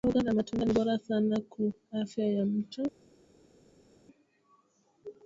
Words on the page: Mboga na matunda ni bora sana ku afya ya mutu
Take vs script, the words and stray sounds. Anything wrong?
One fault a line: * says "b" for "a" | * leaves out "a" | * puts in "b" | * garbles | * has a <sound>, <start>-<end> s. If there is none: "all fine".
all fine